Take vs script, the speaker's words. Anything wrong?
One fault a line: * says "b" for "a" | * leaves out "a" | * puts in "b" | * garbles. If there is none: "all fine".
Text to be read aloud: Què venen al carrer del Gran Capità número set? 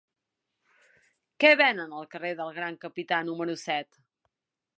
all fine